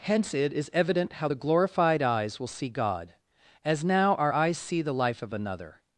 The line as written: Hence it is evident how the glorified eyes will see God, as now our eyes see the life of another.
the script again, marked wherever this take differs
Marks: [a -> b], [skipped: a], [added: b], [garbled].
Hence it is evident how the glorified eyes will see God, as now our eyes see the life of another.